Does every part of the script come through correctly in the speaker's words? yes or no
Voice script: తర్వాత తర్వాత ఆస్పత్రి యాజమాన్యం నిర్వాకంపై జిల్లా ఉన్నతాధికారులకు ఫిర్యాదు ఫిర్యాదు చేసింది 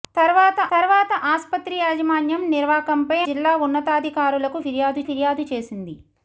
yes